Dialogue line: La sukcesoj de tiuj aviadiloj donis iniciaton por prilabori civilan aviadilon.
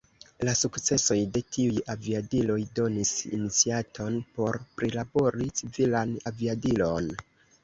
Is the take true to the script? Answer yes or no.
yes